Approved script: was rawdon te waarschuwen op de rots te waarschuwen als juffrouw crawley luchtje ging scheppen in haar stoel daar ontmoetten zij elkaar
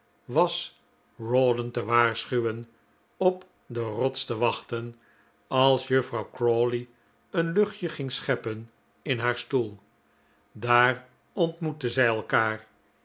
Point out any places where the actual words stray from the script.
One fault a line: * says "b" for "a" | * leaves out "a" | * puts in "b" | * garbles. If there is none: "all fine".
* says "wachten" for "waarschuwen"
* puts in "een"